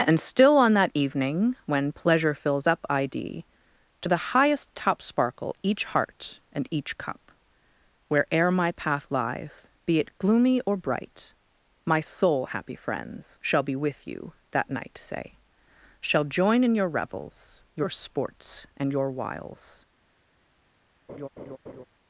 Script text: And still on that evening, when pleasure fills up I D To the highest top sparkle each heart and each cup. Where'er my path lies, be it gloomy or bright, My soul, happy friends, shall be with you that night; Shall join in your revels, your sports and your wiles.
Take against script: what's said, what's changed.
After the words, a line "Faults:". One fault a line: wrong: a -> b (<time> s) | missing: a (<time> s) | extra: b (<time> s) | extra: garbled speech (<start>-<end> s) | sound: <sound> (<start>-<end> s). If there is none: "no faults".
And still on that evening, when pleasure fills up I D To the highest top sparkle each heart and each cup. Where'er my path lies, be it gloomy or bright, My soul, happy friends, shall be with you that night; say Shall join in your revels, your sports and your wiles.
Faults:
extra: say (15.0 s)
sound: laugh (21.1-21.8 s)